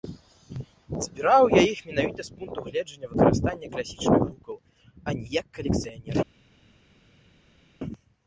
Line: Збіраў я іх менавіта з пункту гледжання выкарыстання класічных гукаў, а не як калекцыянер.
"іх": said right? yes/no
yes